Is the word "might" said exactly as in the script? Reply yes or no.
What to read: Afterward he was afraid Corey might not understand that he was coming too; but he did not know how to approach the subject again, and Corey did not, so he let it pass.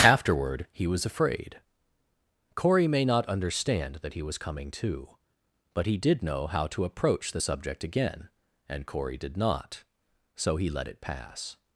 no